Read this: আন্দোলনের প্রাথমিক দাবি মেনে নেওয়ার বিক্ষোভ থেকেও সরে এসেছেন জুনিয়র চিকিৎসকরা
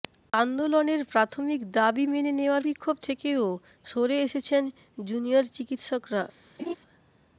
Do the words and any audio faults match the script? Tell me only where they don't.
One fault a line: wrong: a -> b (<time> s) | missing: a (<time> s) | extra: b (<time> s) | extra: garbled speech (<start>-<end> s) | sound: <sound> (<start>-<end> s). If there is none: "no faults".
sound: laugh (6.6-6.8 s)